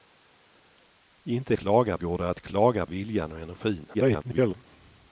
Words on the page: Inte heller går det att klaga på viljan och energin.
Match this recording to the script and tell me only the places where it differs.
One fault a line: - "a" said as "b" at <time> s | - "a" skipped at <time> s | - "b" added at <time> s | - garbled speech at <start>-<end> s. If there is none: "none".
- "heller" said as "klaga" at 1.5 s
- "på" skipped at 2.9 s
- garbled speech at 3.9-4.5 s